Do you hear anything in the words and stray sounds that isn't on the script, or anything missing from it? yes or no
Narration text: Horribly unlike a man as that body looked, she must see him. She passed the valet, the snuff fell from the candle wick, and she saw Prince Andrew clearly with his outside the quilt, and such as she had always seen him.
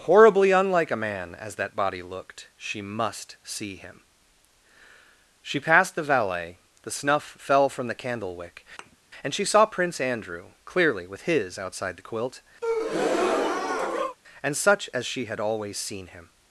yes